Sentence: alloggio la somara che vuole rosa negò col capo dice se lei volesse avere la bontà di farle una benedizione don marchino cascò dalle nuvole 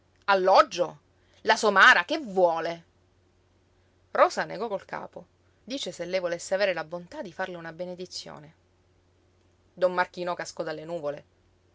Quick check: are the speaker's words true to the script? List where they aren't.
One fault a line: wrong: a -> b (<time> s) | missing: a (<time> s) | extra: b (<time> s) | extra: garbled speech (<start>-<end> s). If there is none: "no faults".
no faults